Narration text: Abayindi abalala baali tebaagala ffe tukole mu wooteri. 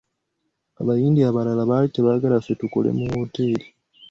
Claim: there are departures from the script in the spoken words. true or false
false